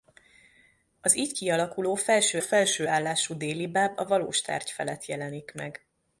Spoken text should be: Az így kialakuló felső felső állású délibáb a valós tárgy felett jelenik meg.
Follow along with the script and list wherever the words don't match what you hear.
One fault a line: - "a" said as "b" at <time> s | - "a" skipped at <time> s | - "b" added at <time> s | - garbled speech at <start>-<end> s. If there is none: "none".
none